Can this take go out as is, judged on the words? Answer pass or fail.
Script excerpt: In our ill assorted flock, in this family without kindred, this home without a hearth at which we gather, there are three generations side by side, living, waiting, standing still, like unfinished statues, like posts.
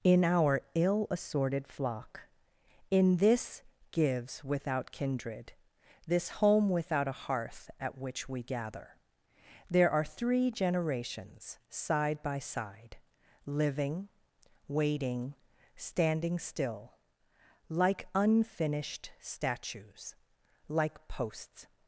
fail